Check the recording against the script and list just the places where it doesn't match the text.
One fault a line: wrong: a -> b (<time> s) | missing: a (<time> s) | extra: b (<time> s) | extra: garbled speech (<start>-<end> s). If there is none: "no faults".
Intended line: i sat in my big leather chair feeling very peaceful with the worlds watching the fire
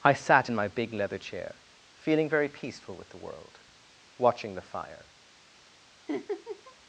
wrong: worlds -> world (3.2 s)